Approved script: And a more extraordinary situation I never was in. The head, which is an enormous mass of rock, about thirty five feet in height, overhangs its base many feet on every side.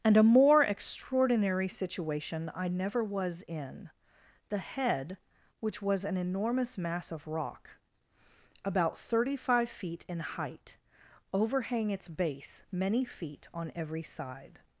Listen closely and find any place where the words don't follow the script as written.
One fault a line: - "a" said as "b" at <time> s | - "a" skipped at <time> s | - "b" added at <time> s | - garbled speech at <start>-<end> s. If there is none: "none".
- "is" said as "was" at 5.8 s
- "overhangs" said as "overhang" at 11.3 s